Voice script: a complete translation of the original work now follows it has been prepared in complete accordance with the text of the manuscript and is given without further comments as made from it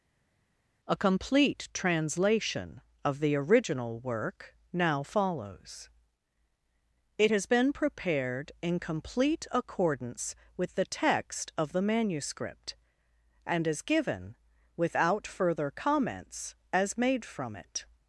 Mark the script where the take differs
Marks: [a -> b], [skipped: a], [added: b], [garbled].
a complete translation of the original work now follows it has been prepared in complete accordance with the text of the manuscript and is given without further comments as made from it